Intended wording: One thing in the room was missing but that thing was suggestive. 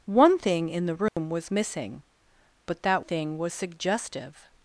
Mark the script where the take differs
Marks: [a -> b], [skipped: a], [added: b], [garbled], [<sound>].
One thing in the room [dropout] was missing but that thing was suggestive.